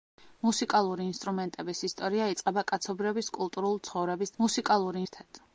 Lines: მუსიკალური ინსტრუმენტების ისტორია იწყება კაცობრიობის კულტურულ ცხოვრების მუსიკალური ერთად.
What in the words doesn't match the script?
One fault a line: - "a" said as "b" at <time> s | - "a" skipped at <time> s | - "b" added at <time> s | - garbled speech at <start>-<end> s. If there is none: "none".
none